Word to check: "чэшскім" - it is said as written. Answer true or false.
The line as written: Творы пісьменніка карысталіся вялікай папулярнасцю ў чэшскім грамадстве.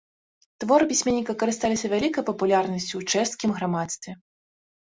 true